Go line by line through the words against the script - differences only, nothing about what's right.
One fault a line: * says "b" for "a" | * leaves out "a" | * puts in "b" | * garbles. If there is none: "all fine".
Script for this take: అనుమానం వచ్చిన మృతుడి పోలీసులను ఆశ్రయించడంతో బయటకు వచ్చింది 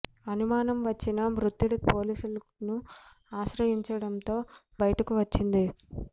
all fine